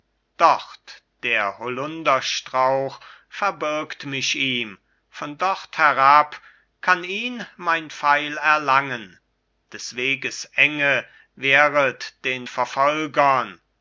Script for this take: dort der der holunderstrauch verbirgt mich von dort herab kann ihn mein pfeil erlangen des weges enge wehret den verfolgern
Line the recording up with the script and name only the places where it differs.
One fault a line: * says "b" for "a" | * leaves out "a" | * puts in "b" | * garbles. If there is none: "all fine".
* leaves out "der"
* puts in "ihm"